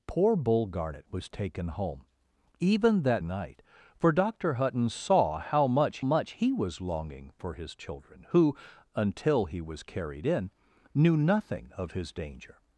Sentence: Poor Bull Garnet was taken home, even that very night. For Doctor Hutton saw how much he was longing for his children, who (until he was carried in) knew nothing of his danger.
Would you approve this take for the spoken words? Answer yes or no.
no